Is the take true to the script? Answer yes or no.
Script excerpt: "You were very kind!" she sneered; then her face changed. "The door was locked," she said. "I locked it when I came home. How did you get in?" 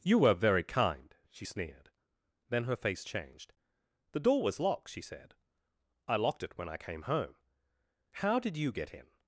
yes